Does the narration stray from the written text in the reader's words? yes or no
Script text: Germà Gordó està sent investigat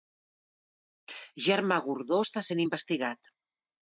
no